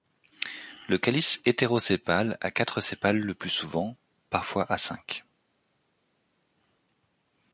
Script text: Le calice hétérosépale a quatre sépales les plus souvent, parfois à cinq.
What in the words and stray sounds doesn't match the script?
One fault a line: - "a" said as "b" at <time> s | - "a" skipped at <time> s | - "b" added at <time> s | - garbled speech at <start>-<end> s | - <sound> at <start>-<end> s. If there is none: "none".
- "les" said as "le" at 3.2 s